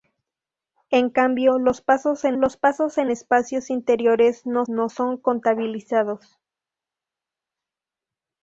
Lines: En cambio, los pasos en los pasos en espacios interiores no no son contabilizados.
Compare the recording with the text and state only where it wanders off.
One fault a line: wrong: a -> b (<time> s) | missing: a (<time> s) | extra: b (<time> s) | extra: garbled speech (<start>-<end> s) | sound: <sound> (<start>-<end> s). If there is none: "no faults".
no faults